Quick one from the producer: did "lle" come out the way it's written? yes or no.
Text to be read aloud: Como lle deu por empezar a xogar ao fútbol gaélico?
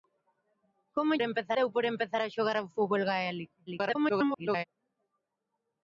no